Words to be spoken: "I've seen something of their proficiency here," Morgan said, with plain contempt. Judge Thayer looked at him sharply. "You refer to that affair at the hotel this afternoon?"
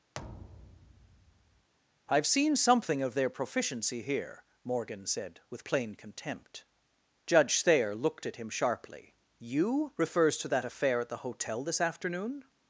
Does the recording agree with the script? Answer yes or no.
no